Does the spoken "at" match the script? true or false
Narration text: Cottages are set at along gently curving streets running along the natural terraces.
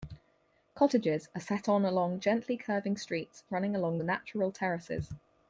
false